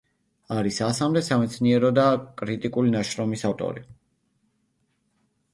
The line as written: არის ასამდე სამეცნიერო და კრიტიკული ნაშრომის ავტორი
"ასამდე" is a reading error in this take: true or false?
false